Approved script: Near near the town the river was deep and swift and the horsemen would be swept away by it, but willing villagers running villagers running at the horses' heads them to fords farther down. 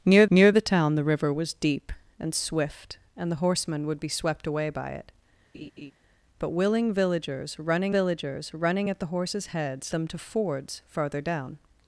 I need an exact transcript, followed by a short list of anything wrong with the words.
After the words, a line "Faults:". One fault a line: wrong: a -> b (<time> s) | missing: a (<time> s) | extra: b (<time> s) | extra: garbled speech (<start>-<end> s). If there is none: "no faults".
Near near the town the river was deep and swift and the horsemen would be swept away by it, but willing villagers running villagers running at the horses' heads them to fords farther down.
Faults:
no faults